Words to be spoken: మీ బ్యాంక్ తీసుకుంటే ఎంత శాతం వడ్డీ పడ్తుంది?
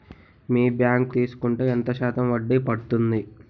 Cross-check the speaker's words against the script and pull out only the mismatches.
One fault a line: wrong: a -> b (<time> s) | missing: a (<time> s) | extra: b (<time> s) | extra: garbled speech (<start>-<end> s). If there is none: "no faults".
no faults